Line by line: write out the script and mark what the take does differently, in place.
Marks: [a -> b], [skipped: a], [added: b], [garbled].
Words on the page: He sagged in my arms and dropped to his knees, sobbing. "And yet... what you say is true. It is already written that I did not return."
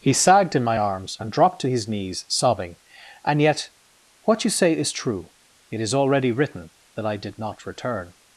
He sagged in my arms and dropped to his knees, sobbing. "And yet... what you say is true. It is already written that I did not return."